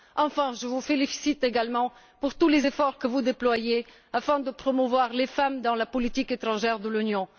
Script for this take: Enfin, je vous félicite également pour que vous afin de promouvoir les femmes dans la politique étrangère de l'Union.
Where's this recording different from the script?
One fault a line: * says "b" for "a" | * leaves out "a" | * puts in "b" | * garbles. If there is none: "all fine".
* puts in "tous les efforts"
* puts in "déployez"